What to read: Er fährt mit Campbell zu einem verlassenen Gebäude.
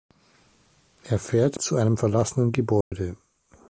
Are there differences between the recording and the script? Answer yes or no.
yes